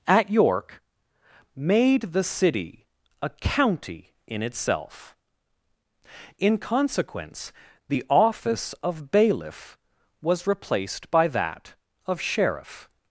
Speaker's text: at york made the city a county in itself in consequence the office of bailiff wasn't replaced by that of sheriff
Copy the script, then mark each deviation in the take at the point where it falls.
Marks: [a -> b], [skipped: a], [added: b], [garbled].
at york made the city a county in itself in consequence the office of bailiff [wasn't -> was] replaced by that of sheriff